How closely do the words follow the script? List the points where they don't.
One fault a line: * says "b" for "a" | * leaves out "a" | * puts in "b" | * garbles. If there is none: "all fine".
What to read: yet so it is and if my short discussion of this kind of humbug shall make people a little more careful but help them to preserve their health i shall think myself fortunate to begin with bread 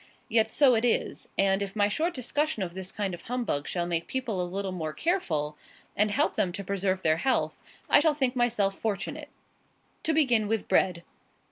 * says "and" for "but"